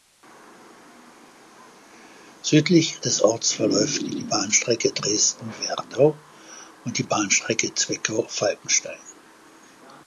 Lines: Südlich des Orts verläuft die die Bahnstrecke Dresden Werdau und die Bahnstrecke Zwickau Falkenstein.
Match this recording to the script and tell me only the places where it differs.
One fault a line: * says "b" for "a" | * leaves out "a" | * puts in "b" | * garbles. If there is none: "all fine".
all fine